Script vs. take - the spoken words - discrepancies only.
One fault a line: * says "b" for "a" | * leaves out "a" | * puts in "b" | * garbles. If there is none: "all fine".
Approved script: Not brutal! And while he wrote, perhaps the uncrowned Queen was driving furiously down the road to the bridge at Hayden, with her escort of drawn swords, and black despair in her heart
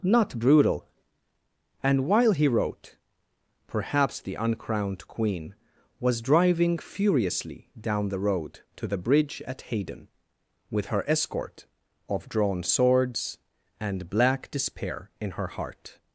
all fine